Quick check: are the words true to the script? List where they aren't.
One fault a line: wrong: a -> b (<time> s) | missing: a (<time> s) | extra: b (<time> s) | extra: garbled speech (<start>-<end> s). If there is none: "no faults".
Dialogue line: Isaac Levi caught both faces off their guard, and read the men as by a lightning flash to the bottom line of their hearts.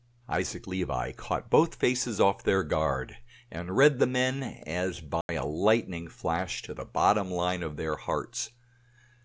no faults